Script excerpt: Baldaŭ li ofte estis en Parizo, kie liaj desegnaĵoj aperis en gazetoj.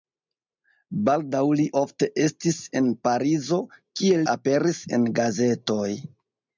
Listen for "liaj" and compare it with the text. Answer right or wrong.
wrong